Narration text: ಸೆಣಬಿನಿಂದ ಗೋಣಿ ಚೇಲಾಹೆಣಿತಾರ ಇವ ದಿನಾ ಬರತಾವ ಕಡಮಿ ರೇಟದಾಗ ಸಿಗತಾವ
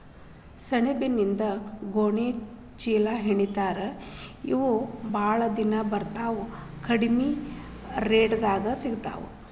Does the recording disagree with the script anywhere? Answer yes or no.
yes